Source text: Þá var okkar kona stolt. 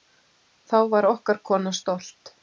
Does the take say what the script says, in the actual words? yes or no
yes